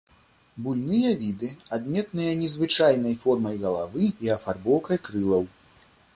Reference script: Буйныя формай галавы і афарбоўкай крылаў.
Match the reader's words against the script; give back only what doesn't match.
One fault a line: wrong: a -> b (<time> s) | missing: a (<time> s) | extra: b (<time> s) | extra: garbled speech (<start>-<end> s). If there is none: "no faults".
extra: віды адметныя незвычайнай (1.2 s)